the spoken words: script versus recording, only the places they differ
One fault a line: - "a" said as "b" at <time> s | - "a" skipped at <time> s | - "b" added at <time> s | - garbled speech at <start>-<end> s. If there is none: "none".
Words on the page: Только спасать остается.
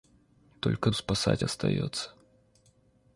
none